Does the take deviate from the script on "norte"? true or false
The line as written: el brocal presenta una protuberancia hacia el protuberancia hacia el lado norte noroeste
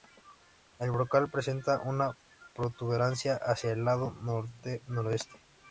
false